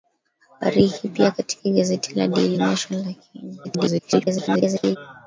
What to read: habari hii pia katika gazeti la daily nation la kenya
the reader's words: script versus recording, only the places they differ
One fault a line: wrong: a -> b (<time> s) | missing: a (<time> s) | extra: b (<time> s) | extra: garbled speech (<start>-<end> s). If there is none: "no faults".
extra: garbled speech (3.6-5.0 s)